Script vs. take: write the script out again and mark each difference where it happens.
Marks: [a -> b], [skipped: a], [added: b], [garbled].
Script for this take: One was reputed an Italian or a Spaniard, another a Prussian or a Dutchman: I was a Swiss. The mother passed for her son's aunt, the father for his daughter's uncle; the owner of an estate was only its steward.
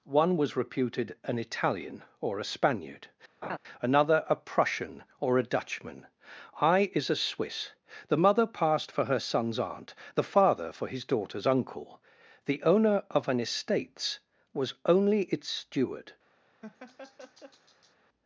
One was reputed an Italian or a Spaniard, another a Prussian or a Dutchman: I [was -> is] a Swiss. The mother passed for her son's aunt, the father for his daughter's uncle; the owner of an [estate -> estates] was only its steward.